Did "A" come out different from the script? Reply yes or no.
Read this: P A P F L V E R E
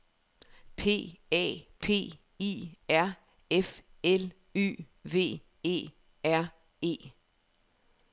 no